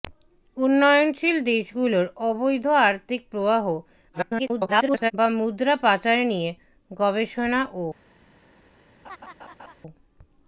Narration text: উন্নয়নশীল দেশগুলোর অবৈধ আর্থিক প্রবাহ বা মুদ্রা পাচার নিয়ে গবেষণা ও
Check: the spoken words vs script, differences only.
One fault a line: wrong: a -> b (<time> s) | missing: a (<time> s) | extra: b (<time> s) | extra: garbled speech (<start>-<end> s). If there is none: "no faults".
extra: garbled speech (4.1-5.1 s)